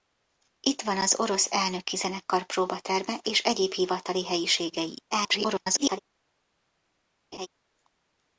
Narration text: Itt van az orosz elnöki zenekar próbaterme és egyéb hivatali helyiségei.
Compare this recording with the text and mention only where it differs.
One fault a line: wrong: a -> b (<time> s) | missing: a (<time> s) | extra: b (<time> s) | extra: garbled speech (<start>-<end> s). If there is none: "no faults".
extra: garbled speech (5.1-6.0 s)